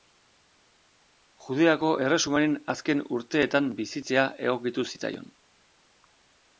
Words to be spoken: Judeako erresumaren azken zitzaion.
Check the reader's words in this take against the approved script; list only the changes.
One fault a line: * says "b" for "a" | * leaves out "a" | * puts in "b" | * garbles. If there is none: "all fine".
* puts in "urteetan bizitzea egokitu"